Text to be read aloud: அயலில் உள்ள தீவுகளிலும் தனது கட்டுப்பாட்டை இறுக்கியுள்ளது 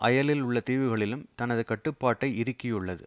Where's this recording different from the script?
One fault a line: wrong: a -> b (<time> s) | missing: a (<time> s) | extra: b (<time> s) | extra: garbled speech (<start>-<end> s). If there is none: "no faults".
no faults